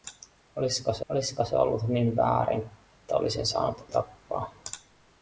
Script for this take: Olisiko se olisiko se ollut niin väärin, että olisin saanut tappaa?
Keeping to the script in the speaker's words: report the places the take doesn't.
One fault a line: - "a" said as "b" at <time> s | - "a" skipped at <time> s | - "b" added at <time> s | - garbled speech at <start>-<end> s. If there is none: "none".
none